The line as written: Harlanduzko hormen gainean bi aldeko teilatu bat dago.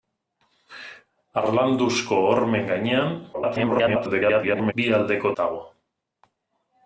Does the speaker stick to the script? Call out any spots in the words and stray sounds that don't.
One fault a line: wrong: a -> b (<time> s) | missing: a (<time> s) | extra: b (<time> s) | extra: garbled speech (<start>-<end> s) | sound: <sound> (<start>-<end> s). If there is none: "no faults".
extra: garbled speech (3.3-4.7 s)
missing: teilatu bat (5.3 s)